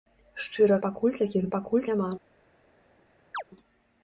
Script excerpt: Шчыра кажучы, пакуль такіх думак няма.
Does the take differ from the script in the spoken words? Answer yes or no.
yes